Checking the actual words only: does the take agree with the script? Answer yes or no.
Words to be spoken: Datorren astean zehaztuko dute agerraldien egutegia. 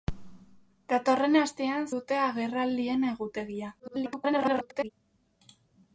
no